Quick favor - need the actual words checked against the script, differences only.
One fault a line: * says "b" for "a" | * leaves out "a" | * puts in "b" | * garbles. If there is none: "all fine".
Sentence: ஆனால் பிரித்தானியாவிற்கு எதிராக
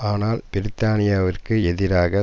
all fine